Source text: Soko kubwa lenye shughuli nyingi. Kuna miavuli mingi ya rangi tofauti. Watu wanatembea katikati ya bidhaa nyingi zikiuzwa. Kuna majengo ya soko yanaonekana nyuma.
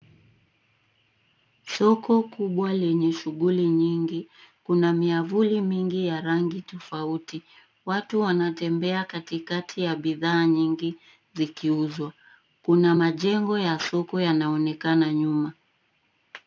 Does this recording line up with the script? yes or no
yes